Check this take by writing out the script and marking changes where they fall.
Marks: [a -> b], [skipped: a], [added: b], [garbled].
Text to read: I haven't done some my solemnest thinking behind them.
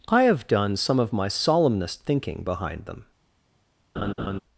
I [haven't -> have] done some [added: of] my solemnest thinking behind them.